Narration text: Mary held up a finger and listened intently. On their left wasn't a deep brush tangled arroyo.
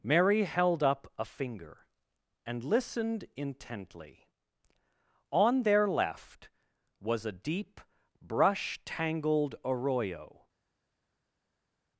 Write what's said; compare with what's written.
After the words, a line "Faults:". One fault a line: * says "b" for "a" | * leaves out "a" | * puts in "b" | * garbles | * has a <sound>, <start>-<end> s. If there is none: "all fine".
Mary held up a finger and listened intently. On their left was a deep brush tangled arroyo.
Faults:
* says "was" for "wasn't"